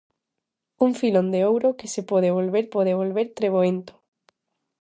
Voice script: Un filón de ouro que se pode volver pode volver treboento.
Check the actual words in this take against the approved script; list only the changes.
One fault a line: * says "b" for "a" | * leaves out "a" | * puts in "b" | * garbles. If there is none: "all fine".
all fine